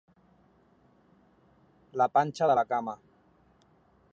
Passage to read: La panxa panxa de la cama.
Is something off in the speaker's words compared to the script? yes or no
yes